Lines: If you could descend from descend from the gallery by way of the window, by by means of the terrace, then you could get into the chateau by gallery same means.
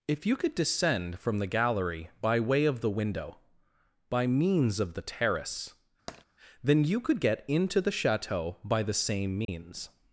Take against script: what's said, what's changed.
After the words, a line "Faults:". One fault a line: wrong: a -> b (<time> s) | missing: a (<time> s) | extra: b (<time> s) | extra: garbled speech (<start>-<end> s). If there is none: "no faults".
If you could descend from the gallery by way of the window, by means of the terrace, then you could get into the chateau by the same means.
Faults:
missing: descend from (1.4 s)
missing: by (4.3 s)
wrong: gallery -> the (8.8 s)